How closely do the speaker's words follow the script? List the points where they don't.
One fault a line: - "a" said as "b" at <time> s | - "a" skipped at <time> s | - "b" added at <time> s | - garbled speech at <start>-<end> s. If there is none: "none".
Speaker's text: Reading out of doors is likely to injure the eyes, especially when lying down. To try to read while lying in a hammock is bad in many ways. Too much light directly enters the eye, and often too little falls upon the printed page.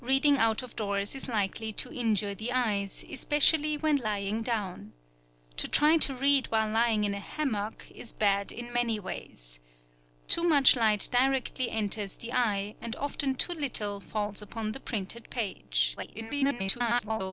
- garbled speech at 16.0-17.3 s